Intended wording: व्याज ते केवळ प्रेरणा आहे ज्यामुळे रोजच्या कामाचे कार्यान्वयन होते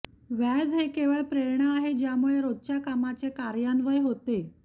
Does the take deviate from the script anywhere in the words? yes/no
yes